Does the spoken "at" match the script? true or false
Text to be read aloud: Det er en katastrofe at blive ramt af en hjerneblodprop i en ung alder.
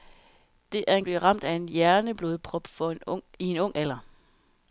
false